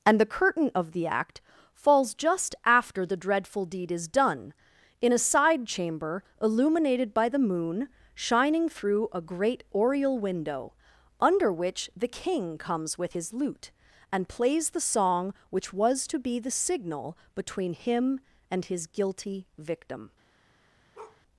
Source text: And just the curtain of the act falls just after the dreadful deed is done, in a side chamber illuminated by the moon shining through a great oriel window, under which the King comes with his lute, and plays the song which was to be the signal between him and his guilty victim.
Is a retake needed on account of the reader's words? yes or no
yes